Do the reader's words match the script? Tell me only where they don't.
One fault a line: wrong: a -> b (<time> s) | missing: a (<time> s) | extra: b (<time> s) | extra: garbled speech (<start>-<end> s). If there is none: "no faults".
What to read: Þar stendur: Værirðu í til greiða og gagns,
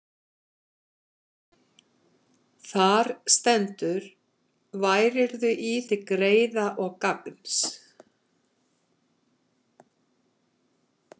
no faults